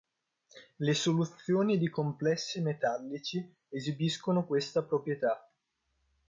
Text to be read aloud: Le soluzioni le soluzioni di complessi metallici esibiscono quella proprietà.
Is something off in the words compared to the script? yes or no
yes